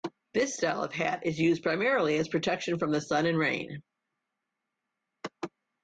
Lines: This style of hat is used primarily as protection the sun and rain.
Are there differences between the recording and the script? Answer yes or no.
yes